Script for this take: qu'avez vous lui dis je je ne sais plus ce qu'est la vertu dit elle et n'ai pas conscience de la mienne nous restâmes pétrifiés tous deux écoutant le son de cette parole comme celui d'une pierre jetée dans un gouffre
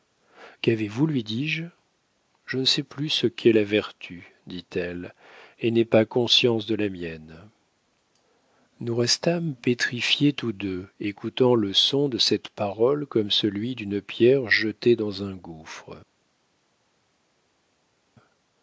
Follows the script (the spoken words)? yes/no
yes